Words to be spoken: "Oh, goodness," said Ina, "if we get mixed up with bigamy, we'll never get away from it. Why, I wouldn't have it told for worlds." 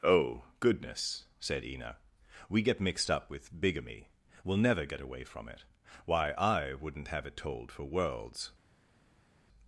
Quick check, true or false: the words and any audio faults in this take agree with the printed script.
false